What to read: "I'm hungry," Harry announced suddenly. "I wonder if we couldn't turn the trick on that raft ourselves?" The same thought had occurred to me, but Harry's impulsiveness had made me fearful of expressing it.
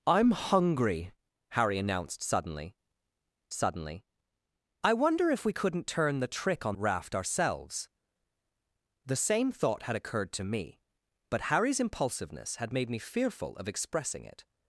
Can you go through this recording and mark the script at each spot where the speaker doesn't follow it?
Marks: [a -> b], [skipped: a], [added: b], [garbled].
"I'm hungry," Harry announced suddenly. [added: suddenly] "I wonder if we couldn't turn the trick on [skipped: that] raft ourselves?" The same thought had occurred to me, but Harry's impulsiveness had made me fearful of expressing it.